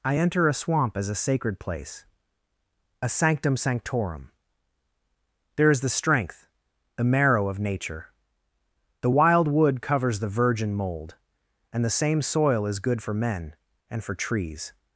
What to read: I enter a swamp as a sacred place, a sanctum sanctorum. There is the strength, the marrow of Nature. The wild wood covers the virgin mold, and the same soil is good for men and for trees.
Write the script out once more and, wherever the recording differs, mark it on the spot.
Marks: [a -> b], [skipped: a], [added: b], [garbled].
I enter a swamp as a sacred place, a sanctum sanctorum. There is the strength, the marrow of Nature. The wild wood covers the virgin mold, and the same soil is good for men and for trees.